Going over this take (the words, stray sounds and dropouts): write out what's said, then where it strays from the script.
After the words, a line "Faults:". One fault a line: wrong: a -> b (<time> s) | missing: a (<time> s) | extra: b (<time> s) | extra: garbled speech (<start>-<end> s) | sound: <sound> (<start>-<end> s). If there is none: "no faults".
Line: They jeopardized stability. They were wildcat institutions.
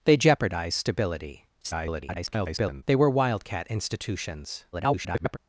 They jeopardized stability. [garbled] They were wildcat institutions. [garbled]
Faults:
extra: garbled speech (1.6-2.8 s)
extra: garbled speech (4.7-5.4 s)